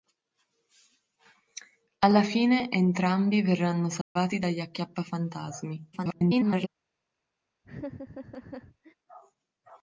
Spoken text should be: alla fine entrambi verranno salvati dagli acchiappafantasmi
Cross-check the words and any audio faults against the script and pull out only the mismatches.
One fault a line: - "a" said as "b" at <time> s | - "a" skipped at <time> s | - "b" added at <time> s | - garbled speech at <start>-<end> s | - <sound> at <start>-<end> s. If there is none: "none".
- dropout at 4.0-4.2 s
- garbled speech at 5.9-6.7 s
- laugh at 7.6-8.9 s